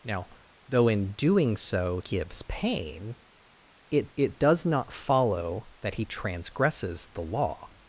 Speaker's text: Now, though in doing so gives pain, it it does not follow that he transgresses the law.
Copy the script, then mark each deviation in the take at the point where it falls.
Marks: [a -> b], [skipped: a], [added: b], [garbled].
Now, though in doing so gives pain, it it does not follow that he transgresses the law.